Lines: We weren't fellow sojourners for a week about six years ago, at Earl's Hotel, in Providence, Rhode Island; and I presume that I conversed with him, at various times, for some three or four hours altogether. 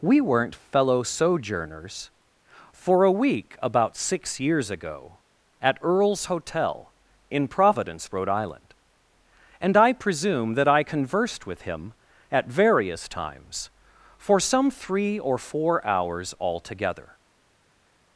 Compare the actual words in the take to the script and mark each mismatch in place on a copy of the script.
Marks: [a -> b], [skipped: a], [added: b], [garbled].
We weren't fellow sojourners for a week about six years ago, at Earl's Hotel, in Providence, Rhode Island; and I presume that I conversed with him, at various times, for some three or four hours altogether.